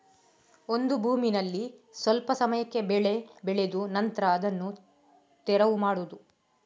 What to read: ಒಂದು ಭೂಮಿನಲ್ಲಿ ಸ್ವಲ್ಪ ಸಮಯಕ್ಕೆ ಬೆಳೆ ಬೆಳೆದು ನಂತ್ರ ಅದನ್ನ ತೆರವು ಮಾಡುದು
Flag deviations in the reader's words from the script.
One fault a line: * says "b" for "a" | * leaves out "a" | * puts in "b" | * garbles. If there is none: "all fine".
all fine